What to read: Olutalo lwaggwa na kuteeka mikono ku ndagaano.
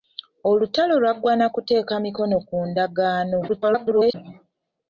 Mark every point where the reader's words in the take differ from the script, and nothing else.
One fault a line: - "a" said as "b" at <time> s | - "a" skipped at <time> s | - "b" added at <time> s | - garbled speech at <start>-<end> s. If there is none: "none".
- garbled speech at 3.5-4.1 s